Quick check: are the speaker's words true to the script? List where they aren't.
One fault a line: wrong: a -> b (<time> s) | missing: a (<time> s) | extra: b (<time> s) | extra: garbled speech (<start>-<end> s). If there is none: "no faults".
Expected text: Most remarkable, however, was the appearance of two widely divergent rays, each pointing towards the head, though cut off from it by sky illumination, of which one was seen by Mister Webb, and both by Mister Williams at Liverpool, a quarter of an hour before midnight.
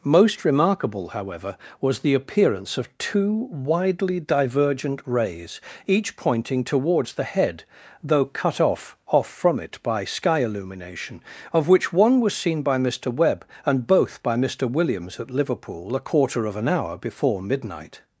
extra: off (9.1 s)